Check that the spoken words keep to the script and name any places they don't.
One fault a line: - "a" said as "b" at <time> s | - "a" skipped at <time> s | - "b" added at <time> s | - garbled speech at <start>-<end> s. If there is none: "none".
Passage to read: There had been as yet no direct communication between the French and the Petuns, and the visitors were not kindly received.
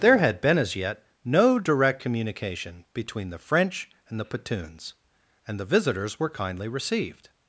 - "not" skipped at 6.3 s